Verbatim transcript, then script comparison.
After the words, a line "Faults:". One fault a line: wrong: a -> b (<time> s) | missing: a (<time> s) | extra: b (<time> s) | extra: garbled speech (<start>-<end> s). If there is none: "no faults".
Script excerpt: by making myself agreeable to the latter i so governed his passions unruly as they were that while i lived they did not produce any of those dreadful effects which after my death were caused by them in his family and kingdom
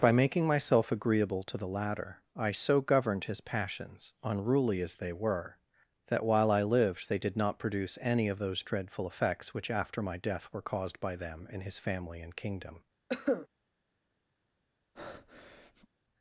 by making myself agreeable to the latter i so governed his passions unruly as they were that while i lived they did not produce any of those dreadful effects which after my death were caused by them in his family and kingdom
Faults:
no faults